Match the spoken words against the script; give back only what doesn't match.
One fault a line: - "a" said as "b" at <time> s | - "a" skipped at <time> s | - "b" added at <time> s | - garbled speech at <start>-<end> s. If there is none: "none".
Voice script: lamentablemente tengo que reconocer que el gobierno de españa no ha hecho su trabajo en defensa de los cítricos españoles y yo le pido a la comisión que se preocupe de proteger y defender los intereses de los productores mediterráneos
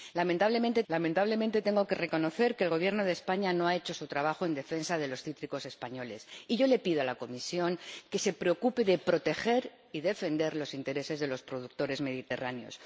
- "lamentablemente" added at 0.9 s